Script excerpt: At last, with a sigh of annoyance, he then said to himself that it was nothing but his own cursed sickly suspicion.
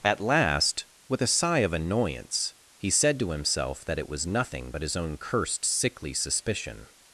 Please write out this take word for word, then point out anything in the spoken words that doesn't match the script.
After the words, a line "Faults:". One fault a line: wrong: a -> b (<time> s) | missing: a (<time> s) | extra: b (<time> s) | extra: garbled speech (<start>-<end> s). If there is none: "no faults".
At last, with a sigh of annoyance, he said to himself that it was nothing but his own cursed sickly suspicion.
Faults:
missing: then (2.9 s)